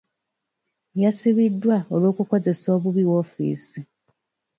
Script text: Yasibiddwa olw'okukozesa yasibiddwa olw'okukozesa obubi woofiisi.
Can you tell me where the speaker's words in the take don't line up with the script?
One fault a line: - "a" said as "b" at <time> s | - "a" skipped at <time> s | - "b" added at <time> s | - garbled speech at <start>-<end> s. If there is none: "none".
- "yasibiddwa olw'okukozesa" skipped at 2.7 s